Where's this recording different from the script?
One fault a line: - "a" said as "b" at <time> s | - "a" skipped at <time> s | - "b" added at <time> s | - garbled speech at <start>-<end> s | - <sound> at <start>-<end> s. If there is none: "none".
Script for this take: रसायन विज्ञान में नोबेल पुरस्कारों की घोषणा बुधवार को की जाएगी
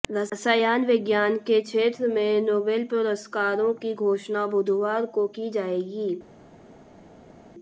- "के क्षेत्र" added at 1.5 s